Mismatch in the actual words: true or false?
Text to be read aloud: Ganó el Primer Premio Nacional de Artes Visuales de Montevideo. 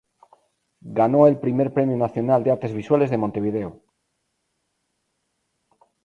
false